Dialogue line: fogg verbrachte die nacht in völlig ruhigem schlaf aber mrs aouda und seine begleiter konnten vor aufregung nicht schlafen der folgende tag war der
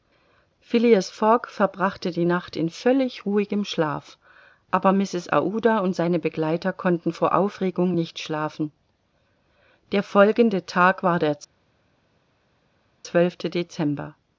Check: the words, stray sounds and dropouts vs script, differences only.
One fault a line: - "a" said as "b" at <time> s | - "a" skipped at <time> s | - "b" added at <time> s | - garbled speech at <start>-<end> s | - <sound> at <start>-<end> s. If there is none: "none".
none